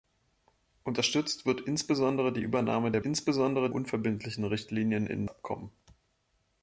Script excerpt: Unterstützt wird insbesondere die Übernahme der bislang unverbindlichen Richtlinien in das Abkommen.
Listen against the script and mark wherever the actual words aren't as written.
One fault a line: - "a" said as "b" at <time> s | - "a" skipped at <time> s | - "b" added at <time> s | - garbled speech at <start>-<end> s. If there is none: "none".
- "bislang" said as "insbesondere" at 3.0 s
- "das" skipped at 5.3 s